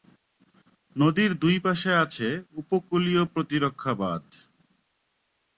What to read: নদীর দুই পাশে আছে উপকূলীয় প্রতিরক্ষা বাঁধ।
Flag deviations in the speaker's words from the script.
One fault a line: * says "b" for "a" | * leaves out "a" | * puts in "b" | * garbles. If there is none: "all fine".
all fine